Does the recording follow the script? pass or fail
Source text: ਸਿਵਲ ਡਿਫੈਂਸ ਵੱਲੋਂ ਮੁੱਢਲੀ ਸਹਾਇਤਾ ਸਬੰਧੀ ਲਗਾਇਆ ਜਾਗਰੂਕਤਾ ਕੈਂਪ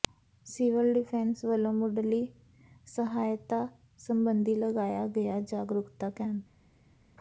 fail